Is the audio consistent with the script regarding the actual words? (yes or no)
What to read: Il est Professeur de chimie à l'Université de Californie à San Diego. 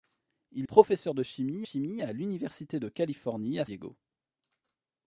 no